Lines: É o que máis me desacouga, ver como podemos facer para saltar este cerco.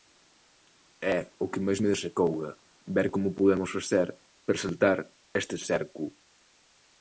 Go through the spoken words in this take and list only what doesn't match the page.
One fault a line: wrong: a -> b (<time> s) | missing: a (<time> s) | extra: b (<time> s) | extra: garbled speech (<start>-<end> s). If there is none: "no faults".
no faults